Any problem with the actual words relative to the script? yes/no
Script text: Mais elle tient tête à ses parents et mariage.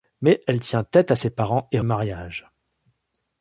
no